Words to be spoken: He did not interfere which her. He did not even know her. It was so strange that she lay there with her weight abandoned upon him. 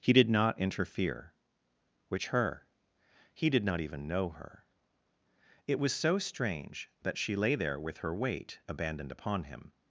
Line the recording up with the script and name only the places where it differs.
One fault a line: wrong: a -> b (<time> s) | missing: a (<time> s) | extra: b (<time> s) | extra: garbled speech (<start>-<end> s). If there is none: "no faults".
no faults